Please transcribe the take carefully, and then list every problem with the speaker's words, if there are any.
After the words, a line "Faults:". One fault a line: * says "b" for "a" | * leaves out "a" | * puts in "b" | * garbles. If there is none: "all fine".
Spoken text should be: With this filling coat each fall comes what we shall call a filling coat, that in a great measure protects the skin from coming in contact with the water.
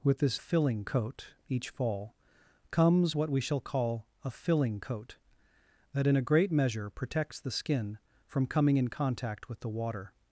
With this filling coat each fall comes what we shall call a filling coat, that in a great measure protects the skin from coming in contact with the water.
Faults:
all fine